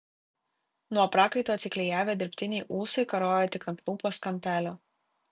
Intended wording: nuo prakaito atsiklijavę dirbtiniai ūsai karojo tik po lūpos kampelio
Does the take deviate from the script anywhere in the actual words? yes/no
yes